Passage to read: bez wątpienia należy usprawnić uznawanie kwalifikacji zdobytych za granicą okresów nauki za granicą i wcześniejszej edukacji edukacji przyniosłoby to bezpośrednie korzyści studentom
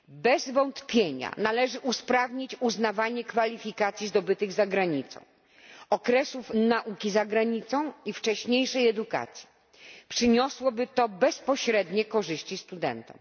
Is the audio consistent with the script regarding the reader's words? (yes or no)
no